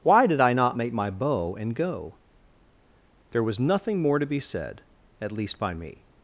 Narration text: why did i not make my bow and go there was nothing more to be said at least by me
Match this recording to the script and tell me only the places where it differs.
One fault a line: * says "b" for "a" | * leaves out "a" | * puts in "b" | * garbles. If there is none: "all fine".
all fine